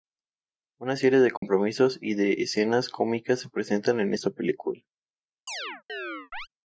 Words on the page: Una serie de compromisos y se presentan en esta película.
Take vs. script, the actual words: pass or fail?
fail